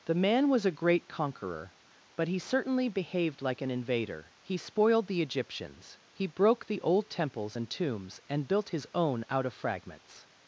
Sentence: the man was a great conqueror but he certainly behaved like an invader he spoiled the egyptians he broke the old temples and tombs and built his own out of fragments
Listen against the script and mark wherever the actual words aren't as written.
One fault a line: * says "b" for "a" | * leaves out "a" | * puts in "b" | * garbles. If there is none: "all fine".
all fine